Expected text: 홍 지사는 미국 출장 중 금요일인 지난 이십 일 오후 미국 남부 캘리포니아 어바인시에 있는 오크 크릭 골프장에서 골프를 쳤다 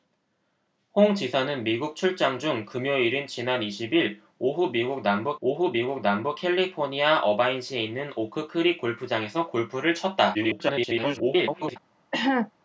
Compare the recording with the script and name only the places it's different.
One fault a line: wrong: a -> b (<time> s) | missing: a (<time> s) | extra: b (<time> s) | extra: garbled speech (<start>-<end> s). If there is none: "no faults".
extra: 오후 미국 남부 (5.4 s)
extra: garbled speech (10.3-11.8 s)